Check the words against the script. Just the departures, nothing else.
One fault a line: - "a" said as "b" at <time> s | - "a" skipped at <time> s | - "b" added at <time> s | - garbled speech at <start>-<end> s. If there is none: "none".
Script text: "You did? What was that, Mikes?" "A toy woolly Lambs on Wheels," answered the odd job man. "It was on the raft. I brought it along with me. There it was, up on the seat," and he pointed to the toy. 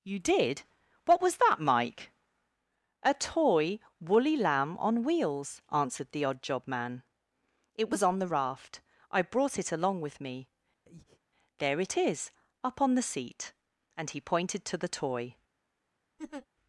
- "Mikes" said as "Mike" at 1.6 s
- "Lambs" said as "Lamb" at 4.3 s
- "was" said as "is" at 12.0 s